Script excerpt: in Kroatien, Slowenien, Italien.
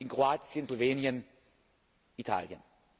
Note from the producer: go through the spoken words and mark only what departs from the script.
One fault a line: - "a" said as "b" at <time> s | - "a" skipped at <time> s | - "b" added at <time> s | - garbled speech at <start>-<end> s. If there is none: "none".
none